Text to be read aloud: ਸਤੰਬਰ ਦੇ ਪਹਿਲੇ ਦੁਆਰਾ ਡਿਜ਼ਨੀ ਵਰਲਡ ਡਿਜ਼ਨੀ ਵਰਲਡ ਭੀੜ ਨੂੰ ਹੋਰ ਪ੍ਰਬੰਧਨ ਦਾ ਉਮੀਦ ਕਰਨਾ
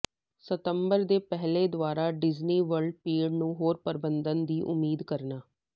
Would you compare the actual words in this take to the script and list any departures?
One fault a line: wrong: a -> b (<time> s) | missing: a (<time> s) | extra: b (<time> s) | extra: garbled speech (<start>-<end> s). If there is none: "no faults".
missing: ਡਿਜ਼ਨੀ ਵਰਲਡ (2.9 s)
wrong: ਦਾ -> ਦੀ (4.5 s)